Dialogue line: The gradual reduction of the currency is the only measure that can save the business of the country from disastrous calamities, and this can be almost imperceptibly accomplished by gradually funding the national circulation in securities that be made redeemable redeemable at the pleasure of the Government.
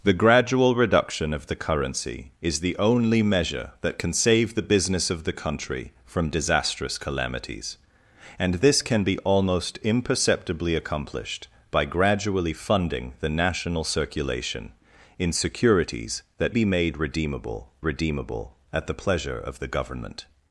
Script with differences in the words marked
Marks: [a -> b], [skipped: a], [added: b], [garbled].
The gradual reduction of the currency is the only measure that can save the business of the country from disastrous calamities, and this can be almost imperceptibly accomplished by gradually funding the national circulation in securities that be made redeemable redeemable at the pleasure of the Government.